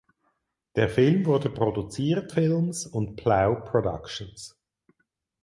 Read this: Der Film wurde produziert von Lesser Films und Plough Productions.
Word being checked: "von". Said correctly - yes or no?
no